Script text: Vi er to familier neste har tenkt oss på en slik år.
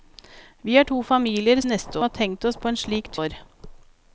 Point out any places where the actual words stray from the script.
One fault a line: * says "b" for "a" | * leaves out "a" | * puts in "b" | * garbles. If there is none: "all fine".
all fine